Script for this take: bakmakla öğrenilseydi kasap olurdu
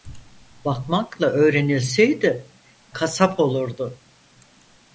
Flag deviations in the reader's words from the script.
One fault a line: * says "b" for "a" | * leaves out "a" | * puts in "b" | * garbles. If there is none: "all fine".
all fine